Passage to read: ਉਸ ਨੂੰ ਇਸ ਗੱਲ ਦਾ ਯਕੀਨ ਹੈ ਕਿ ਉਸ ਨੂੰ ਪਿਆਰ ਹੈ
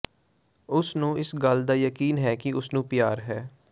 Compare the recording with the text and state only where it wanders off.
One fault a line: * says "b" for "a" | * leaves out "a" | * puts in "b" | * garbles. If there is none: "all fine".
all fine